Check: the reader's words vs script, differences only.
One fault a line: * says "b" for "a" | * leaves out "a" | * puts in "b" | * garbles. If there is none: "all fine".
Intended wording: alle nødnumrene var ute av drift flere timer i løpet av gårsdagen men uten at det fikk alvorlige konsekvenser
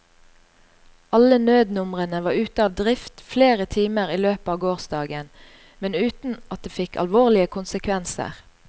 all fine